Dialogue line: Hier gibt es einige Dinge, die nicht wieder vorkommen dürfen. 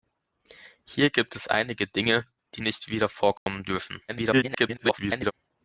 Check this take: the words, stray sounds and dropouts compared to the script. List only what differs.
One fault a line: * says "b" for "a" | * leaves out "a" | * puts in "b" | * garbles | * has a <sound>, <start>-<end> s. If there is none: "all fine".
* has a dropout, 3.4-3.5 s
* garbles